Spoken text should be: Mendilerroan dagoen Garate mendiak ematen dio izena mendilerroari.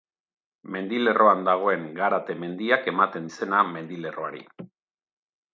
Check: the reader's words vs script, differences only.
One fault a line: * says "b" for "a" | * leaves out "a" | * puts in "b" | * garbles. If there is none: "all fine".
* leaves out "dio"